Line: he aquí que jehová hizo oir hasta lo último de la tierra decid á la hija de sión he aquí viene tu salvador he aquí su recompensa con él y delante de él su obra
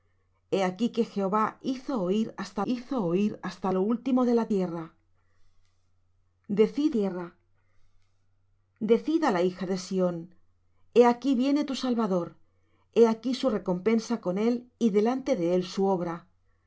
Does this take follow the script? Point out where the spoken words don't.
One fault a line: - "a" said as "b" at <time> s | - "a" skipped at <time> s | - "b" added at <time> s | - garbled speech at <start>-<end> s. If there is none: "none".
- "hizo oir hasta" added at 2.7 s
- "tierra decid" added at 7.0 s